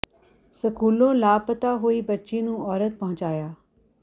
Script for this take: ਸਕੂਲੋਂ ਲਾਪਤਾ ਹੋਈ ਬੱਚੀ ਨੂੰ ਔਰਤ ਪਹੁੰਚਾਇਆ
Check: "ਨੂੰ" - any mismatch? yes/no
no